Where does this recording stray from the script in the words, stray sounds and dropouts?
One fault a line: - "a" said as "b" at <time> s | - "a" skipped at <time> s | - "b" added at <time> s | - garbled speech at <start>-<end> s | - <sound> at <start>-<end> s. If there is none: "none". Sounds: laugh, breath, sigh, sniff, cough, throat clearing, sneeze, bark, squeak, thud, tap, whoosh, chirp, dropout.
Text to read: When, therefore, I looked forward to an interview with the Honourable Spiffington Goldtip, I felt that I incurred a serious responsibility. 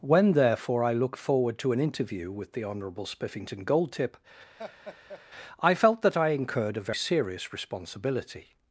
- laugh at 4.6-5.2 s